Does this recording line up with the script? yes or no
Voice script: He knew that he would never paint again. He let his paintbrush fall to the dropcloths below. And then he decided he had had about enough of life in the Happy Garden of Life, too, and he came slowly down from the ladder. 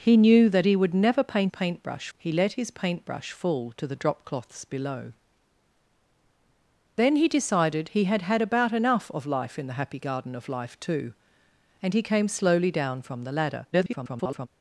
no